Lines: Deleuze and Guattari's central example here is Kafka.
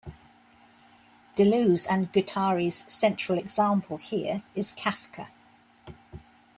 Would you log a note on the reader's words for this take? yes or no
no